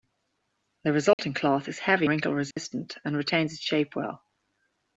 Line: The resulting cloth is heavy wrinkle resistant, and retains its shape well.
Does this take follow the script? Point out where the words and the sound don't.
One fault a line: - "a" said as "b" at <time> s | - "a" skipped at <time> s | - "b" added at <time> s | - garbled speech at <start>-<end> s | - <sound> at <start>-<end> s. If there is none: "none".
- dropout at 1.1-1.2 s
- dropout at 2.5-2.6 s